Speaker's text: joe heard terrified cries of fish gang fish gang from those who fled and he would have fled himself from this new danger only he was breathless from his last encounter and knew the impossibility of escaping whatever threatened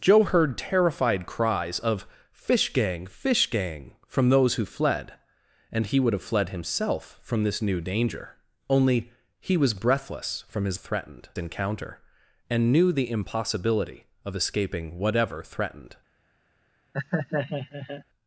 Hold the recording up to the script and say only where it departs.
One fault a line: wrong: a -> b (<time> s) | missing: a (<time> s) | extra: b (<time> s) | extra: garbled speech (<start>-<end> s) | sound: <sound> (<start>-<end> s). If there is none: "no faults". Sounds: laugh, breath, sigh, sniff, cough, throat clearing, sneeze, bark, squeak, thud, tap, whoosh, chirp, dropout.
wrong: last -> threatened (10.8 s)
sound: laugh (16.9-18.0 s)